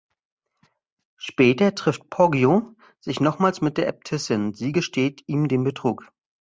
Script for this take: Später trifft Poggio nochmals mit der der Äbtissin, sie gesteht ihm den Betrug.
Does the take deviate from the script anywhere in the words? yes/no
yes